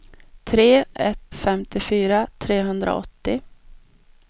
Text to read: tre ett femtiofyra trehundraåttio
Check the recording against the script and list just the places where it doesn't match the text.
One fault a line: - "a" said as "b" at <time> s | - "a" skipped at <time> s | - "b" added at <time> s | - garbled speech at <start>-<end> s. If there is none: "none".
none